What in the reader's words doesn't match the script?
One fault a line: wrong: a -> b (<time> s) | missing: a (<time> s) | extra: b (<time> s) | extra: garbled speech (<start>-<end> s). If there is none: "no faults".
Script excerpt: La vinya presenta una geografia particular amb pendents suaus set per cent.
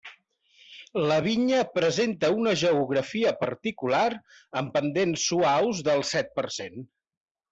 extra: del (5.9 s)